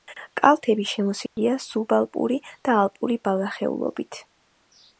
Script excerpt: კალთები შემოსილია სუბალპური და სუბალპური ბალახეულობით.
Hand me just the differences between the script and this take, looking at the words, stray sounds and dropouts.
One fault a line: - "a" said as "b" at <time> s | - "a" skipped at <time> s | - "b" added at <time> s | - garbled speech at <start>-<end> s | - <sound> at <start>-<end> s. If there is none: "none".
- dropout at 1.3-1.4 s
- "სუბალპური" said as "ალპური" at 2.8 s